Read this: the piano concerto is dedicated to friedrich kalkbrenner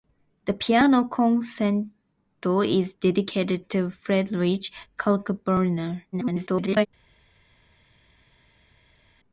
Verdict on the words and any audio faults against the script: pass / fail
fail